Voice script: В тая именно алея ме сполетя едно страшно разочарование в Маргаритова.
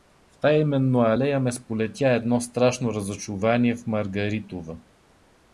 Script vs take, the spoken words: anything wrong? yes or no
no